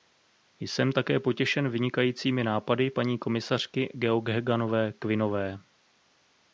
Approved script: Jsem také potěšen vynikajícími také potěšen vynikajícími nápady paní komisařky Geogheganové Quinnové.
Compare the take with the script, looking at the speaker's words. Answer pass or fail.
fail